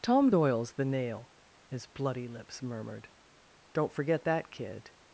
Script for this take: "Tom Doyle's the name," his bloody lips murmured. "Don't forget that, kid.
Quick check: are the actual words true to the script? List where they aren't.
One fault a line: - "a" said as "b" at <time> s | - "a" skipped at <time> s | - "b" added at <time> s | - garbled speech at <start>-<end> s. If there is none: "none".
- "name" said as "nail" at 0.9 s